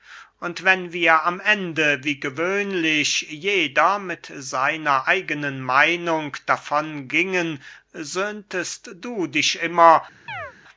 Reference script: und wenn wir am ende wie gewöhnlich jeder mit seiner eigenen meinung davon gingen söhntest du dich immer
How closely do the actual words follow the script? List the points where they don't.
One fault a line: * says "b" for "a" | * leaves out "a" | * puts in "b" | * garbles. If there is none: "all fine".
all fine